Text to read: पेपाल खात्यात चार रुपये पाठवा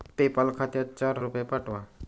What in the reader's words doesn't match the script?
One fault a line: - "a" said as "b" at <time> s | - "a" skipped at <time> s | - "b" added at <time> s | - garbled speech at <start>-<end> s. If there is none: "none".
none